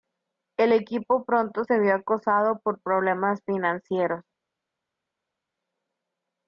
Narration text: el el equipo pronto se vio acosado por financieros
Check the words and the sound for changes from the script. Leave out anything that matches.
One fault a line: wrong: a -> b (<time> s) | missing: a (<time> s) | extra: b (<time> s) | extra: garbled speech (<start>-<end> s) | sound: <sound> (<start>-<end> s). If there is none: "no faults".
missing: el (0.7 s)
extra: problemas (2.8 s)